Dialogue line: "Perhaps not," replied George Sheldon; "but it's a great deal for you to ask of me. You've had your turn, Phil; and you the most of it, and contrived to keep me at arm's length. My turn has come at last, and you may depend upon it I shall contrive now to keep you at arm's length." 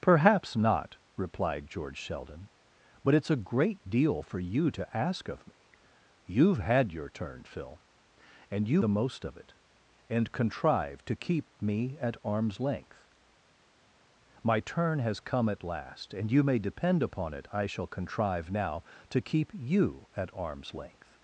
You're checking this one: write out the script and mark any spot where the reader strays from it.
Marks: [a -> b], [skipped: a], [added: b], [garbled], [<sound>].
"Perhaps not," replied George Sheldon; "but it's a great deal for you to ask of me. You've had your turn, Phil; and you the most of it, and contrived to keep me at arm's length. My turn has come at last, and you may depend upon it I shall contrive now to keep you at arm's length."